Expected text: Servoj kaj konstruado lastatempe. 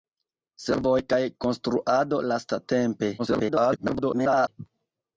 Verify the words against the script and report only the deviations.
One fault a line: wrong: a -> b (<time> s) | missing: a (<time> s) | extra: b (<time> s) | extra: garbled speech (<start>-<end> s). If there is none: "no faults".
extra: garbled speech (3.2-4.5 s)